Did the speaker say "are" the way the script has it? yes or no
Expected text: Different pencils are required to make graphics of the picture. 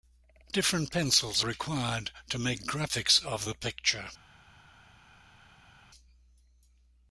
no